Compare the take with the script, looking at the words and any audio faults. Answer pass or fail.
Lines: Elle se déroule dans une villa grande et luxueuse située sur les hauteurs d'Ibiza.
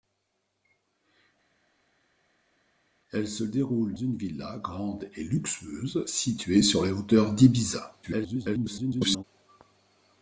fail